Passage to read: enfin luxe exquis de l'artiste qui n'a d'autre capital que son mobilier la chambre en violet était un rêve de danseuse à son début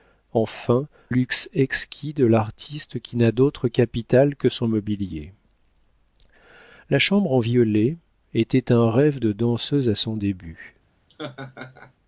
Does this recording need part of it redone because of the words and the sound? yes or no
yes